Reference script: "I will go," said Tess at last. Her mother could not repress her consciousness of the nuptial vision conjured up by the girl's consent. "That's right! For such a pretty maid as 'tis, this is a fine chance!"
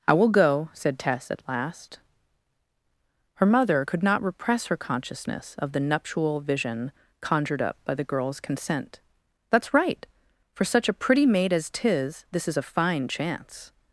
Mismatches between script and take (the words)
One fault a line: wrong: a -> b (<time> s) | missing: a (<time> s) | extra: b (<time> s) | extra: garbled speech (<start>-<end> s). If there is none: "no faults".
no faults